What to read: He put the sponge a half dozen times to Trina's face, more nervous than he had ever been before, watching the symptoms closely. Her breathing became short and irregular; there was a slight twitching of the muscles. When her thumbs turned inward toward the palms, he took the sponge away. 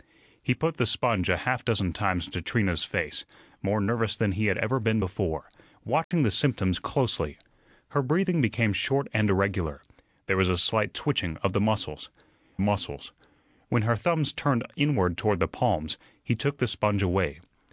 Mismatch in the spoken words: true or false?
true